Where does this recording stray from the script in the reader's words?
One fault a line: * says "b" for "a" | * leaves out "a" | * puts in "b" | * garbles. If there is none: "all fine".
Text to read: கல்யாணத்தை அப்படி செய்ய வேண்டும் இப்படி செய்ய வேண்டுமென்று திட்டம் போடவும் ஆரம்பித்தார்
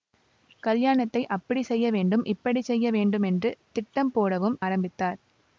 all fine